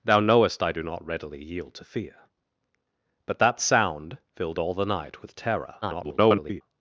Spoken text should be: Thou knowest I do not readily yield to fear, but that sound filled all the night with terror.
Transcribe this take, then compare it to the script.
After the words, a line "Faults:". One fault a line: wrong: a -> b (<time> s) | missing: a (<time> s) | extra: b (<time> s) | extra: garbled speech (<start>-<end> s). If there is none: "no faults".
Thou knowest I do not readily yield to fear, but that sound filled all the night with terror. [garbled]
Faults:
extra: garbled speech (5.8-6.6 s)